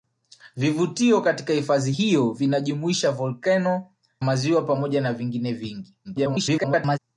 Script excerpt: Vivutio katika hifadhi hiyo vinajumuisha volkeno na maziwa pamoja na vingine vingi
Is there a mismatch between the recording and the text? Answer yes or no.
yes